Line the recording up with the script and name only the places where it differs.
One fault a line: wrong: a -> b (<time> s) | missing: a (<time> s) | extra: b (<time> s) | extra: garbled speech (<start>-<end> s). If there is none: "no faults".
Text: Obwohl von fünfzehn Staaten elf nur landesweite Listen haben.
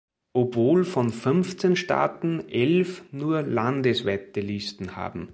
no faults